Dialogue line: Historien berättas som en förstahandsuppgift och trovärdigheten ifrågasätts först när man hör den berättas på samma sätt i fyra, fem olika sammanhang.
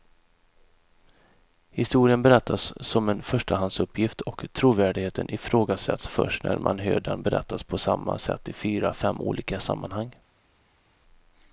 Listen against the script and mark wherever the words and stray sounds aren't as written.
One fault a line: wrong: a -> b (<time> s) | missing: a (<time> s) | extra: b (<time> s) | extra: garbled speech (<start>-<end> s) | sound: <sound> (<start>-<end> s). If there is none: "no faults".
no faults